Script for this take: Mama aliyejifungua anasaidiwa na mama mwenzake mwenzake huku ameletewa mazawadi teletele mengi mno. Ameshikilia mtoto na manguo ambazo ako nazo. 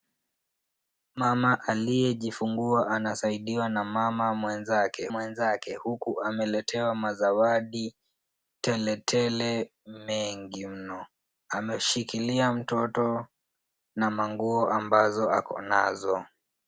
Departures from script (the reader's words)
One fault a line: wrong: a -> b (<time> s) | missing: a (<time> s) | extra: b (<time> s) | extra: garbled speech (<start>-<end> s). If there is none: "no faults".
no faults